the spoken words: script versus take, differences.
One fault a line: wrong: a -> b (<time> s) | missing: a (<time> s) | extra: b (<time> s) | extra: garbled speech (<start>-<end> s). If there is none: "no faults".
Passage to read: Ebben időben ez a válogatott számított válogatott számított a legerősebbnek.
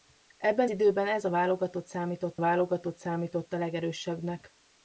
no faults